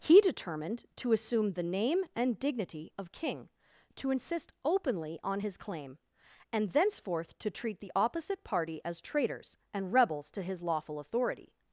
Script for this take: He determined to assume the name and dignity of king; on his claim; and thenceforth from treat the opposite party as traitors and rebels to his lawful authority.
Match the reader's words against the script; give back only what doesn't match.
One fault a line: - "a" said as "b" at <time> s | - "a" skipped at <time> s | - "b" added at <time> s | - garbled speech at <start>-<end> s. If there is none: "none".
- "to insist openly" added at 4.0 s
- "from" said as "to" at 7.4 s